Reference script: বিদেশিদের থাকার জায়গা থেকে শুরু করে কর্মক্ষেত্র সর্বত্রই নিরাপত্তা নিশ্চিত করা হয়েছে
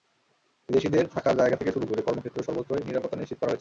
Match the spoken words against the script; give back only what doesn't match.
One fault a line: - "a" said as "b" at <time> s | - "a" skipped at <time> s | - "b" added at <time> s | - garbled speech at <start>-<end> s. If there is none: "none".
none